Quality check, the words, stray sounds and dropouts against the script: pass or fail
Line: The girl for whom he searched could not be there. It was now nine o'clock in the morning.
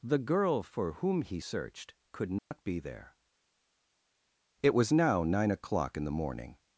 fail